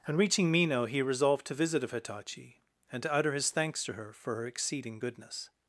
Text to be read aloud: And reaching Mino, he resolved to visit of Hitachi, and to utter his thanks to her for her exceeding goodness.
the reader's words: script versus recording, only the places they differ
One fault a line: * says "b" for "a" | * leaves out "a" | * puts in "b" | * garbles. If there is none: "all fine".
all fine